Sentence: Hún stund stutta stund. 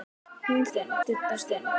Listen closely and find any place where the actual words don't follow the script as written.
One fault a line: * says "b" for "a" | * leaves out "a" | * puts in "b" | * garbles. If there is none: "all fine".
all fine